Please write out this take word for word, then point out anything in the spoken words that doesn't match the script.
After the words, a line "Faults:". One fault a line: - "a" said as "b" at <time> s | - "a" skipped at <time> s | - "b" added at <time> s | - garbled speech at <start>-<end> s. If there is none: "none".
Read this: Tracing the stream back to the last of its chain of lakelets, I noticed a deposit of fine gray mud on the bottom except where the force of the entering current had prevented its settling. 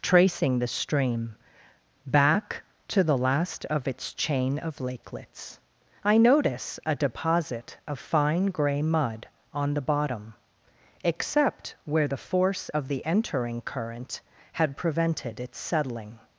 Tracing the stream back to the last of its chain of lakelets, I notice a deposit of fine gray mud on the bottom except where the force of the entering current had prevented its settling.
Faults:
- "noticed" said as "notice" at 6.2 s